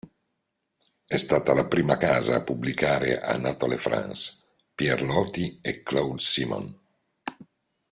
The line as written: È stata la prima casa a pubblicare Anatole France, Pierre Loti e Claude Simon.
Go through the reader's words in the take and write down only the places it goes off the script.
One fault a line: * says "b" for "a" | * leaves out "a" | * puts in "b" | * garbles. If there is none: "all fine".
all fine